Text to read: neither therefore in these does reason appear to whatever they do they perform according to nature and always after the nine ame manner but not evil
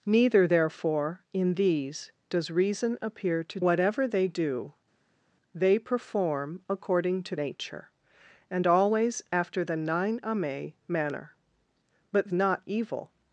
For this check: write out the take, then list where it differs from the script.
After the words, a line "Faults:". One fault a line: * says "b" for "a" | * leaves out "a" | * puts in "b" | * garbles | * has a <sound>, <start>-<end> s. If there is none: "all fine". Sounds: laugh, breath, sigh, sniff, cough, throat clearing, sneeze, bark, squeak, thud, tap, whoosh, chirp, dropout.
neither therefore in these does reason appear to whatever they do they perform according to nature and always after the nine ame manner but not evil
Faults:
all fine